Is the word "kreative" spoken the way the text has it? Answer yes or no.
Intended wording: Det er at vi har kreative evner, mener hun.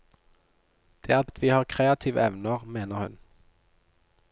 yes